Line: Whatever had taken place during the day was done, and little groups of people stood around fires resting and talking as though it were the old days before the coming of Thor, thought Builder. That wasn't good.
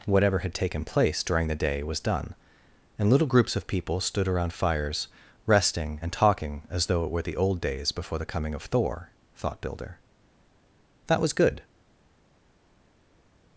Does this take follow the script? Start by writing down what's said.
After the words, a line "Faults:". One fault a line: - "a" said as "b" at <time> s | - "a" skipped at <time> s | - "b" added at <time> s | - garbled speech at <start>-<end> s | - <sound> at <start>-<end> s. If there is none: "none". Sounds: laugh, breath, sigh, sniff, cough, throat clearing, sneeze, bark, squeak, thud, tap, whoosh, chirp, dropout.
Whatever had taken place during the day was done, and little groups of people stood around fires resting and talking as though it were the old days before the coming of Thor, thought Builder. That was good.
Faults:
- "wasn't" said as "was" at 11.2 s